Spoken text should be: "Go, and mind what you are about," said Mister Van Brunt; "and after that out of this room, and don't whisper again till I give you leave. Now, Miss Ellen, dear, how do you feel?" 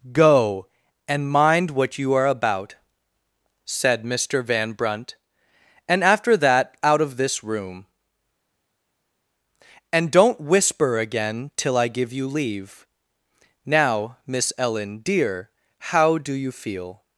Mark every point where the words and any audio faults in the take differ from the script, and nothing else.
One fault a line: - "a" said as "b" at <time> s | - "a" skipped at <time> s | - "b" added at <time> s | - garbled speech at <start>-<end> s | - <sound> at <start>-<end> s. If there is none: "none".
none